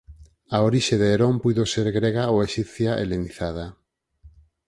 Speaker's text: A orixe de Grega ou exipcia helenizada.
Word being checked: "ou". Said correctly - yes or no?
yes